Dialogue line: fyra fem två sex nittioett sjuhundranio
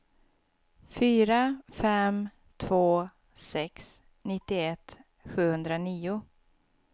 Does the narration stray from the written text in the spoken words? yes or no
no